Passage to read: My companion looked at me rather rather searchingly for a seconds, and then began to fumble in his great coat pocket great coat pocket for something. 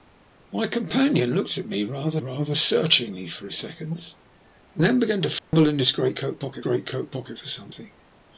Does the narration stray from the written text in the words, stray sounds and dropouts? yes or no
yes